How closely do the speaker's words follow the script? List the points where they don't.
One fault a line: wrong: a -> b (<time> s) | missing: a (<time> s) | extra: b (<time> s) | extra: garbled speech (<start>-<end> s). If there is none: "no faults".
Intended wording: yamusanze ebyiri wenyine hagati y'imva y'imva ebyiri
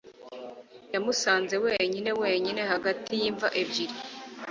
wrong: ebyiri -> wenyine (1.6 s)
missing: y'imva (3.5 s)